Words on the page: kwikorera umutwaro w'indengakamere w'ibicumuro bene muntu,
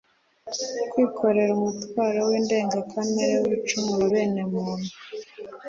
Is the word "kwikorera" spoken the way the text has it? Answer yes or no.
yes